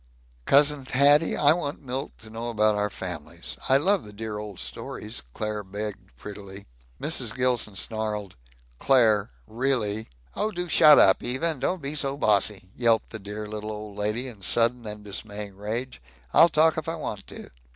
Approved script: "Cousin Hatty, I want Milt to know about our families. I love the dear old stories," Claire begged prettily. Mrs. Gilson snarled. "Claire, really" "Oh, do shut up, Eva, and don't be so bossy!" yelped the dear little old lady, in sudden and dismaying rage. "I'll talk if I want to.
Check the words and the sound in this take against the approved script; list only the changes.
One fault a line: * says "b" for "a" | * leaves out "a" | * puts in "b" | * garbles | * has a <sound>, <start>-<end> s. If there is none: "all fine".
all fine